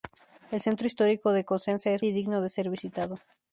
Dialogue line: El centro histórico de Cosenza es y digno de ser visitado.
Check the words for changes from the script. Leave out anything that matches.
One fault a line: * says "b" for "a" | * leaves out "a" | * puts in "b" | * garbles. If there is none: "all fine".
all fine